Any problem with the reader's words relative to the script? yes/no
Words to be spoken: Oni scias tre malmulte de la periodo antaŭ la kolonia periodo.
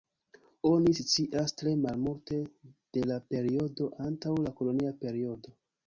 no